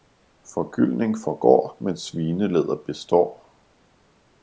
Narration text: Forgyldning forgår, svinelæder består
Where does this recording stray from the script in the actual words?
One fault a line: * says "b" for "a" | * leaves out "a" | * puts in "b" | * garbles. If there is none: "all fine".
* puts in "men"